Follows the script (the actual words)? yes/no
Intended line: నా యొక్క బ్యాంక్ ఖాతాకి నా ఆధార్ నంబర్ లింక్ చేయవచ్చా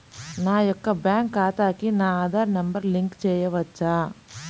yes